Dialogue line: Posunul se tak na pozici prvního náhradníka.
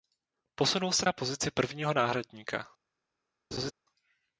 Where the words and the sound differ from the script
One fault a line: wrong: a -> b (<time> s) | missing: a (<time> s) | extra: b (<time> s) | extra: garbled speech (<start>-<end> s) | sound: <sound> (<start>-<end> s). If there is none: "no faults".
missing: tak (1.1 s)
sound: laugh (3.5-3.7 s)